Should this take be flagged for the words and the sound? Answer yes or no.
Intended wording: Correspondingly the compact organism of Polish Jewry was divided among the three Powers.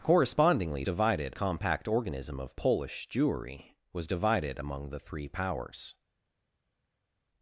yes